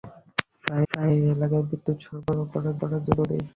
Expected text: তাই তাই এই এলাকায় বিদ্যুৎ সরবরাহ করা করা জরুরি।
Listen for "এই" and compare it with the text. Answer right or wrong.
right